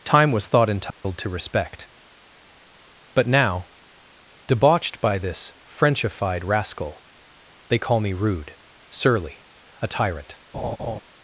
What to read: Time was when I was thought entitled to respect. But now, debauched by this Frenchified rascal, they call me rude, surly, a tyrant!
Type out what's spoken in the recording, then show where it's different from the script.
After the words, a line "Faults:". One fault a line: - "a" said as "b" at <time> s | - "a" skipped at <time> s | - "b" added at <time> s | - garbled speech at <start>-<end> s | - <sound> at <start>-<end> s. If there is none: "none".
Time was thought entitled to respect. But now, debauched by this Frenchified rascal, they call me rude, surly, a tyrant!
Faults:
- "when I was" skipped at 0.5 s
- dropout at 0.9-1.0 s
- laugh at 10.5-11.0 s